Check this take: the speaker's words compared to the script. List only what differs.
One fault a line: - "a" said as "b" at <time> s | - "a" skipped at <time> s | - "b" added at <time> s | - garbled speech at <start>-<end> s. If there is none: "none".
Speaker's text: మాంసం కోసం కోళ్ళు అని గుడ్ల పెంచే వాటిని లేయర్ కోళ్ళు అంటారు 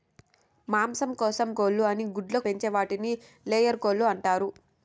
none